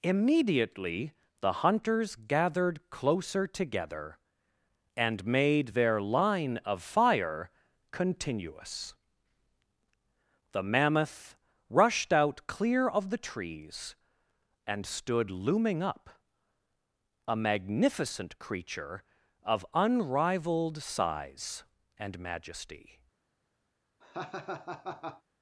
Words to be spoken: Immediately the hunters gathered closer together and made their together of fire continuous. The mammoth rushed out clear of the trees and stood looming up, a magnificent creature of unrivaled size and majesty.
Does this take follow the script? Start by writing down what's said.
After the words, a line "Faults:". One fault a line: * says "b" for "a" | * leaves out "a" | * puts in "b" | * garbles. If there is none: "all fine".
Immediately the hunters gathered closer together and made their line of fire continuous. The mammoth rushed out clear of the trees and stood looming up, a magnificent creature of unrivaled size and majesty.
Faults:
* says "line" for "together"